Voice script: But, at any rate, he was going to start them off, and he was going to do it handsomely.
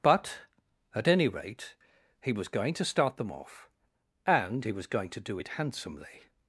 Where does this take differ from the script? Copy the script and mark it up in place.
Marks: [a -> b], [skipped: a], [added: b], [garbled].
But, at any rate, he was going to start them off, and he was going to do it handsomely.